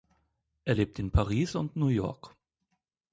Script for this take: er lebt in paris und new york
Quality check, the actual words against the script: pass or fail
pass